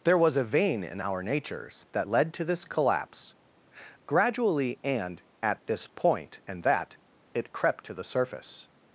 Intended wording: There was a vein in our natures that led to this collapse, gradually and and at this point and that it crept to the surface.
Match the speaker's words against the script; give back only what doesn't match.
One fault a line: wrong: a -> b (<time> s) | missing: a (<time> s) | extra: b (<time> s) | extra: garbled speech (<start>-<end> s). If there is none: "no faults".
missing: and (5.2 s)